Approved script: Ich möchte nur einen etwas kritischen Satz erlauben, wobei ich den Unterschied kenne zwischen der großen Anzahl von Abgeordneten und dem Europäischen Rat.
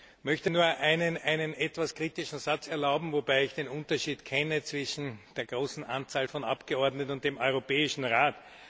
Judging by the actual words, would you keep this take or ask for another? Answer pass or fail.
pass